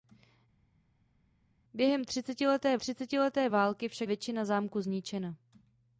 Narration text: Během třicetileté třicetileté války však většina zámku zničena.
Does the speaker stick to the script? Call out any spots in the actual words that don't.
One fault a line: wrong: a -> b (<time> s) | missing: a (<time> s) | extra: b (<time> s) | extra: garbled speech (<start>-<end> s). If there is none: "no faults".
no faults